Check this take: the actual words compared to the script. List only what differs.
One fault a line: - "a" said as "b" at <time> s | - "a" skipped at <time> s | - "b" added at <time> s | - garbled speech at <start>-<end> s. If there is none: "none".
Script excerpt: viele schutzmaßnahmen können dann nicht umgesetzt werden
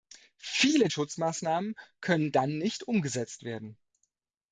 none